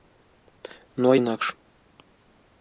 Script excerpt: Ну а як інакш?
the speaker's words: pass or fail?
fail